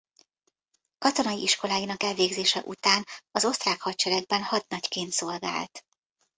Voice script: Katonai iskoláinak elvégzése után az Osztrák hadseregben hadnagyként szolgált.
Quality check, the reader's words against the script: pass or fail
pass